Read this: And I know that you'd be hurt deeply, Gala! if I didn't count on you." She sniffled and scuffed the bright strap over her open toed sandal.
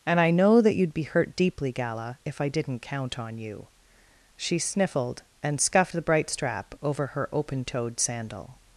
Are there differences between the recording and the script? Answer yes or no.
no